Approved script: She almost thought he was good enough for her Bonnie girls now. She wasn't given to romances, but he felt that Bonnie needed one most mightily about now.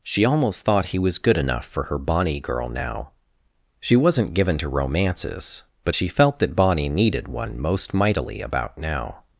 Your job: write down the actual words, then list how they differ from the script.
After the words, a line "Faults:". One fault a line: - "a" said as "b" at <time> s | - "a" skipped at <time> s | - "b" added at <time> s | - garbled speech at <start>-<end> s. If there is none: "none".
She almost thought he was good enough for her Bonnie girl now. She wasn't given to romances, but she felt that Bonnie needed one most mightily about now.
Faults:
- "girls" said as "girl" at 2.4 s
- "he" said as "she" at 5.9 s